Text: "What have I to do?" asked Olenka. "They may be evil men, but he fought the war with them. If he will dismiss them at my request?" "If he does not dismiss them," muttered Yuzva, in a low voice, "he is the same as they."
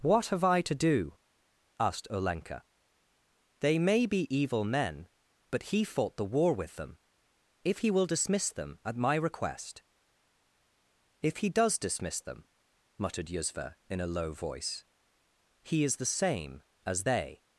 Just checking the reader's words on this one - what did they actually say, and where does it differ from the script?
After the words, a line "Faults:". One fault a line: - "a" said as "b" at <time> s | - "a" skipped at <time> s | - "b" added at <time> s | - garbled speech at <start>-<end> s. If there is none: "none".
"What have I to do?" asked Olenka. "They may be evil men, but he fought the war with them. If he will dismiss them at my request?" "If he does dismiss them," muttered Yuzva, in a low voice, "he is the same as they."
Faults:
- "not" skipped at 11.8 s